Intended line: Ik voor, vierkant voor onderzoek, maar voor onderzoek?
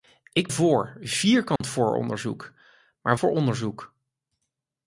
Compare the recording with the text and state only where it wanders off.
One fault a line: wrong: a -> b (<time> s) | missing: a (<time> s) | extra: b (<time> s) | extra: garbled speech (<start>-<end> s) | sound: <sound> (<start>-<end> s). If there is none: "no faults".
sound: dropout (1.6-1.6 s)